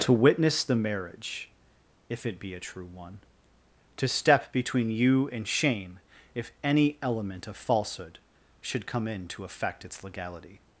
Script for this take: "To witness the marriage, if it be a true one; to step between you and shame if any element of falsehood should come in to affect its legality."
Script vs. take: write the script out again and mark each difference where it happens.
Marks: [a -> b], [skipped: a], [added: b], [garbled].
"To witness the marriage, if it be a true one; to step between you and shame if any element of falsehood should come in to affect its legality."